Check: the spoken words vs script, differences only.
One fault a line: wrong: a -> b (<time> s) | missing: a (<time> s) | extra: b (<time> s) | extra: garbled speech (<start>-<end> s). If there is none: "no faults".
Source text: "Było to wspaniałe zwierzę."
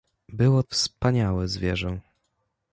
missing: to (0.6 s)